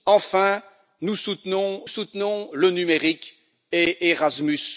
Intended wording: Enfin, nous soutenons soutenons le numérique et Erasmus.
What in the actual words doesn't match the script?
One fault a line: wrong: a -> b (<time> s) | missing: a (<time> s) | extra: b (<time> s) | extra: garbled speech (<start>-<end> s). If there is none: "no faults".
no faults